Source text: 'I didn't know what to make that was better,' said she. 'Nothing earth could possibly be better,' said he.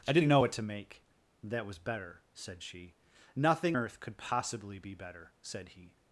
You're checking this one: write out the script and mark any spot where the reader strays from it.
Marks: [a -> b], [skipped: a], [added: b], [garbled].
'I didn't know what to make that was better,' said she. 'Nothing earth could possibly be better,' said he.